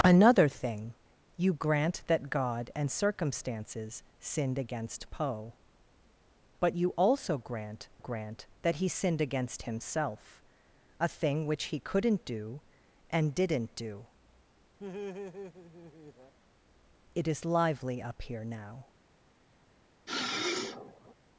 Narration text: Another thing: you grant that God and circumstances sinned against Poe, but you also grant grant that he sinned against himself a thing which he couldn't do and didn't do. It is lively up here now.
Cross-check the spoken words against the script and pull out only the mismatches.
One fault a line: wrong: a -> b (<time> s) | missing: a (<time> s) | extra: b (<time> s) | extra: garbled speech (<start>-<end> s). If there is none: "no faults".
no faults